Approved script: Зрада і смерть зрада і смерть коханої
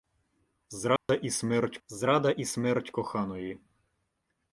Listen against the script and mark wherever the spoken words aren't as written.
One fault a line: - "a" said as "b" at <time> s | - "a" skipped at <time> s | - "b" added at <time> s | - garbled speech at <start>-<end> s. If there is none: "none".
none